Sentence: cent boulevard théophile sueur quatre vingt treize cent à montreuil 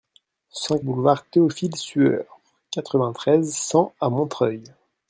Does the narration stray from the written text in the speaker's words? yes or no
no